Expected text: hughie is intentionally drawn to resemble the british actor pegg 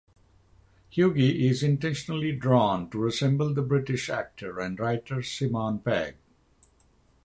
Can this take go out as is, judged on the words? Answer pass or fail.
fail